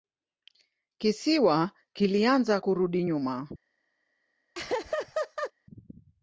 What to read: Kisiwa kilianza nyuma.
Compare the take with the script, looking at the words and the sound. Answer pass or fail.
fail